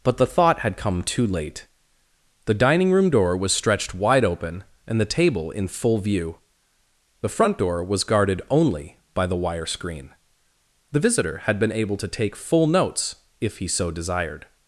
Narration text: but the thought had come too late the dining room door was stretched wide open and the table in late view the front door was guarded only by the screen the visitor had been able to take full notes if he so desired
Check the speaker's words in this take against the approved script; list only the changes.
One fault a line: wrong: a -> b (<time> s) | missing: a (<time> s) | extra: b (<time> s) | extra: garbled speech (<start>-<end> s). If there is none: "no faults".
wrong: late -> full (5.7 s)
extra: wire (9.4 s)